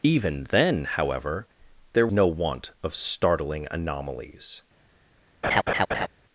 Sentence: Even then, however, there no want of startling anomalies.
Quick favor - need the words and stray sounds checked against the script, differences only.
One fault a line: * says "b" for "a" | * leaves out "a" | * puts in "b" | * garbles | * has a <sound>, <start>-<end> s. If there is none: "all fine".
* has a laugh, 5.4-6.1 s